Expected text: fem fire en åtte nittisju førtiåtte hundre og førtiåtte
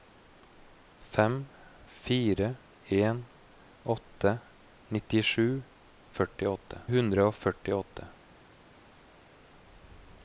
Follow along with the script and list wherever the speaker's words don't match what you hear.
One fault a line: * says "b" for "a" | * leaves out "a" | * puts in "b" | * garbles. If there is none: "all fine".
all fine